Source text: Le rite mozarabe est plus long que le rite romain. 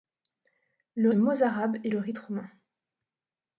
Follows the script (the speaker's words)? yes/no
no